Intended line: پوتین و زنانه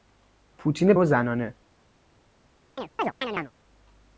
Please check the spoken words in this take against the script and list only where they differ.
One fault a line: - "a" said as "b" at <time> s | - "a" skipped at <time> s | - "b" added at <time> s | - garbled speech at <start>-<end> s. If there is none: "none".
none